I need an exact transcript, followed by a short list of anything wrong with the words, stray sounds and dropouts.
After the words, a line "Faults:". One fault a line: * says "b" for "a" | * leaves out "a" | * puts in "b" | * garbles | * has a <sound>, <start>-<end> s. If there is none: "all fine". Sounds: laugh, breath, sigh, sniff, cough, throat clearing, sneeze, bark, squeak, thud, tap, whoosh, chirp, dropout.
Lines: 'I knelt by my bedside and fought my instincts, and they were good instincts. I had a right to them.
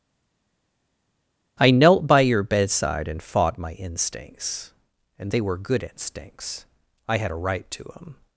'I knelt by your bedside and fought my instincts, and they were good instincts. I had a right to them.
Faults:
* says "your" for "my"